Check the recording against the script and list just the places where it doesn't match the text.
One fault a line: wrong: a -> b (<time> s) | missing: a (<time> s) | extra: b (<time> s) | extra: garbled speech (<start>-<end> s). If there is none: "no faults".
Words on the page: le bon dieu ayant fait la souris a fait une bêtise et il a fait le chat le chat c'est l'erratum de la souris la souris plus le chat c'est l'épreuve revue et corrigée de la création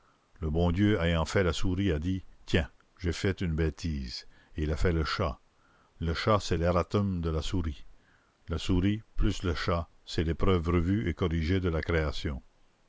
extra: dit tiens j'ai (2.0 s)